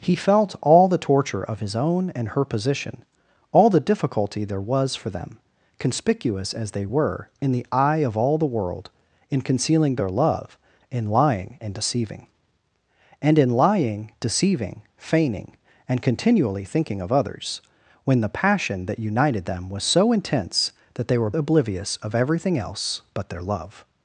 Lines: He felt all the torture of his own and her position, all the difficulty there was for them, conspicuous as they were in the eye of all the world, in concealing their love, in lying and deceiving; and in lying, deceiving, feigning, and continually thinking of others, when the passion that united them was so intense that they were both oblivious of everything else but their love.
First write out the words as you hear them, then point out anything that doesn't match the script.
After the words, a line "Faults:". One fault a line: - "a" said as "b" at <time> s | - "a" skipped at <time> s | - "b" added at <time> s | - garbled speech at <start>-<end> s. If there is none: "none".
He felt all the torture of his own and her position, all the difficulty there was for them, conspicuous as they were in the eye of all the world, in concealing their love, in lying and deceiving; and in lying, deceiving, feigning, and continually thinking of others, when the passion that united them was so intense that they were oblivious of everything else but their love.
Faults:
- "both" skipped at 21.3 s